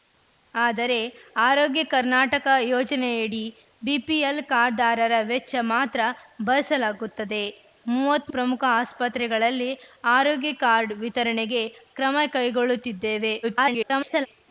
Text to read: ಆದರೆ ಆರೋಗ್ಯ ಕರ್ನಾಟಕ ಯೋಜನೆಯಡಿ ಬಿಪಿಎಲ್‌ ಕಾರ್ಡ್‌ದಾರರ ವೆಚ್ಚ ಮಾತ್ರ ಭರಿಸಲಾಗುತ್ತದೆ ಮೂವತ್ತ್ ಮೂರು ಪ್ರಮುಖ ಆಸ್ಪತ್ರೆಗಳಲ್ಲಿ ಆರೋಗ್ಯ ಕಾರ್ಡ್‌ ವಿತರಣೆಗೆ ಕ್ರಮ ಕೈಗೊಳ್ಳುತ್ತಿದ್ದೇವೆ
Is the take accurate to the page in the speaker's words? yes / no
no